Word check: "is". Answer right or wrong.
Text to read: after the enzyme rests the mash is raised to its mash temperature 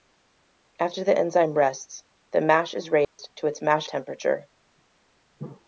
right